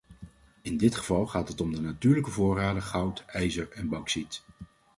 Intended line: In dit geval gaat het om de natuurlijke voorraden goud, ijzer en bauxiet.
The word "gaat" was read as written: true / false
true